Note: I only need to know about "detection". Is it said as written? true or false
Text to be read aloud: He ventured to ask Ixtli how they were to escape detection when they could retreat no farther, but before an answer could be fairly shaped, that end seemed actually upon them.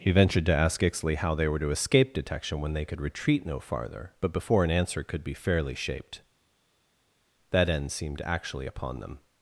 true